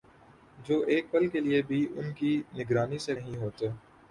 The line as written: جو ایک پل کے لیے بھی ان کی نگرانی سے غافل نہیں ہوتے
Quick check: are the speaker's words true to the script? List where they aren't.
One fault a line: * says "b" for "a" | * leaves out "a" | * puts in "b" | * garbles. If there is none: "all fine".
* leaves out "غافل"